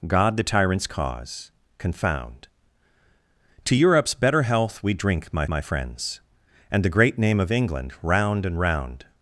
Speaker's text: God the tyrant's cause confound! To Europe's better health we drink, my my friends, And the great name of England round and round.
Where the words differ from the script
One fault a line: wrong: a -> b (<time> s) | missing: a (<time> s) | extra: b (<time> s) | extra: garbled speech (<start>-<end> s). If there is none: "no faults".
no faults